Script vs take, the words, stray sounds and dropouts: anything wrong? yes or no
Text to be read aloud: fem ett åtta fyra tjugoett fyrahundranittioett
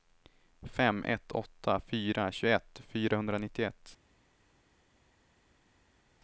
no